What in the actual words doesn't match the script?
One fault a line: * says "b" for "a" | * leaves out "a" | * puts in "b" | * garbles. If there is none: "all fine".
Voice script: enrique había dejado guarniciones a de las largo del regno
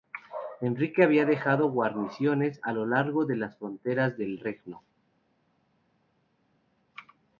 * puts in "lo largo"
* says "fronteras" for "largo"